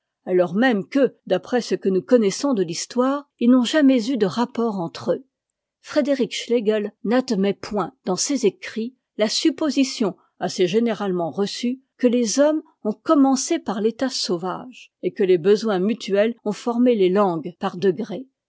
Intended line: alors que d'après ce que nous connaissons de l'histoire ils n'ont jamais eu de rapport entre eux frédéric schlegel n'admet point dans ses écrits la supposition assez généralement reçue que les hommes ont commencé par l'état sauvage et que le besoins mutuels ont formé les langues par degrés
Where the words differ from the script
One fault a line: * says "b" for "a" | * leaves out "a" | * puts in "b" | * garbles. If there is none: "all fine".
* puts in "même"
* says "les" for "le"